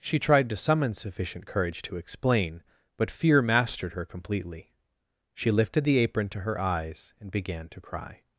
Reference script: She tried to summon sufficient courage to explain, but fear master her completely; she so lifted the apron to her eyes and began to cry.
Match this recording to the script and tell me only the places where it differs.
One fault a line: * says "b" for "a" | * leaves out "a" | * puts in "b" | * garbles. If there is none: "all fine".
* says "mastered" for "master"
* leaves out "so"